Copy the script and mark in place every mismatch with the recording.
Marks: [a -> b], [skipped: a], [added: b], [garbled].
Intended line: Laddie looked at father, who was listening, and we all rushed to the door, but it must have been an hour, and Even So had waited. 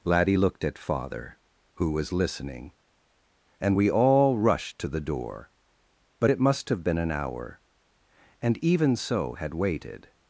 Laddie looked at father, who was listening, and we all rushed to the door, but it must have been an hour, and Even So had waited.